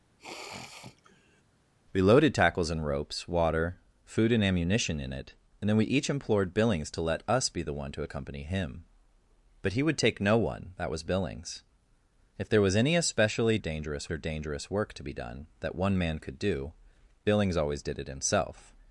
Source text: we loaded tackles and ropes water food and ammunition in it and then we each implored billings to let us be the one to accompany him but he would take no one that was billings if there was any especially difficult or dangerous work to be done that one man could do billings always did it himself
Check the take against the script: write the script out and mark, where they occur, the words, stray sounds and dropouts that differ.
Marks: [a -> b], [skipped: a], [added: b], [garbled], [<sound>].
[sniff] we loaded tackles and ropes water food and ammunition in it and then we each implored billings to let us be the one to accompany him but he would take no one that was billings if there was any especially [difficult -> dangerous] or dangerous work to be done that one man could do billings always did it himself